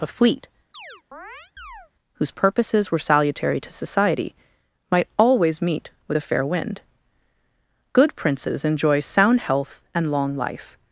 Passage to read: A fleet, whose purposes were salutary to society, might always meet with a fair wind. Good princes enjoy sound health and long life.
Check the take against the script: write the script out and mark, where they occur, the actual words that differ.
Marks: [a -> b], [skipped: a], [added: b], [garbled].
A fleet, whose purposes were salutary to society, might always meet with a fair wind. Good princes enjoy sound health and long life.